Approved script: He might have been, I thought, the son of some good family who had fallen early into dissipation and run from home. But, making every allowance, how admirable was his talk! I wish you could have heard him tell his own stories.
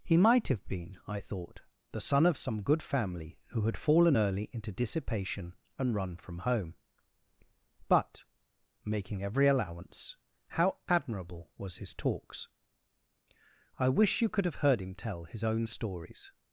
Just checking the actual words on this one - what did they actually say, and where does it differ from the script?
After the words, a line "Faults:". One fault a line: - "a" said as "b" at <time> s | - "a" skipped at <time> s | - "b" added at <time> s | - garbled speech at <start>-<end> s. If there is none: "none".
He might have been, I thought, the son of some good family who had fallen early into dissipation and run from home. But, making every allowance, how admirable was his talks! I wish you could have heard him tell his own stories.
Faults:
- "talk" said as "talks" at 11.9 s